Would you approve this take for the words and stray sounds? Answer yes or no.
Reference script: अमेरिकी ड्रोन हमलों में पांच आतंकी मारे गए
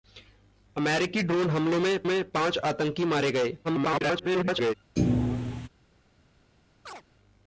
no